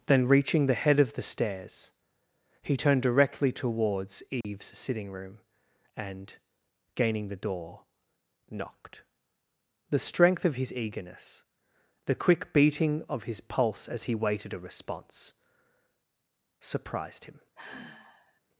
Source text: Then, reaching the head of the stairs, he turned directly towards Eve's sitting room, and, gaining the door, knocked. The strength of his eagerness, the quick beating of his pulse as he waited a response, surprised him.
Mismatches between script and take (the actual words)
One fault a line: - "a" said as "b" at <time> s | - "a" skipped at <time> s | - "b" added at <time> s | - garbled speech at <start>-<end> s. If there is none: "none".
none